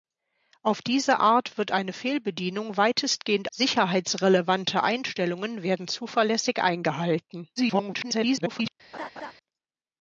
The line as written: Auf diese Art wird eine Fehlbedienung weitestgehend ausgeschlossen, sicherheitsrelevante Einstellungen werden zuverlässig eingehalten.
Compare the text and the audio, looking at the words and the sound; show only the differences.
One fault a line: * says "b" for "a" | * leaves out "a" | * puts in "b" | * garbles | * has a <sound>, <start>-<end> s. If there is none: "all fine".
* leaves out "ausgeschlossen"
* garbles
* has a laugh, 8.9-9.3 s